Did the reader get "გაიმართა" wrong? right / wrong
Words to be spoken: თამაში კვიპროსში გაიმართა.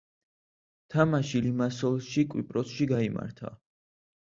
right